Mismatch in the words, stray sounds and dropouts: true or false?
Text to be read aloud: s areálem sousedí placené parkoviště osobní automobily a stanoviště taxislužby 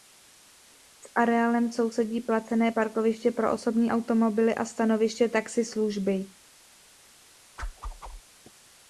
true